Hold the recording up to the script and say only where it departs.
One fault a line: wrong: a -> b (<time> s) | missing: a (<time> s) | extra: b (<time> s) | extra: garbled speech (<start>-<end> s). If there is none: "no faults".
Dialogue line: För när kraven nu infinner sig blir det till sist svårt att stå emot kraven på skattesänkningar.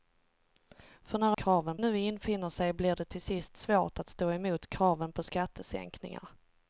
no faults